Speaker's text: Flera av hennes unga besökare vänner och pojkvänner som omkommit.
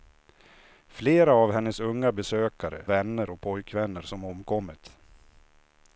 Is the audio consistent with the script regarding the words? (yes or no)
yes